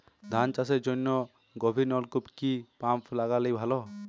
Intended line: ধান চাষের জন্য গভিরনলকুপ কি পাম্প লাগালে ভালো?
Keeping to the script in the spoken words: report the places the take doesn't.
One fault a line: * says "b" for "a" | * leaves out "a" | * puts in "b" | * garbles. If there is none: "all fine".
all fine